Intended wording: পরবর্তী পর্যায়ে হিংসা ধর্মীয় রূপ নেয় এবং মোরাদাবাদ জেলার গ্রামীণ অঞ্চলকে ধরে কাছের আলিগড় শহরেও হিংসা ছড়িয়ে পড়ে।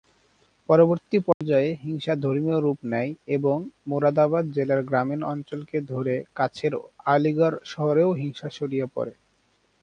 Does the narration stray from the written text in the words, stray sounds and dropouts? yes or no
yes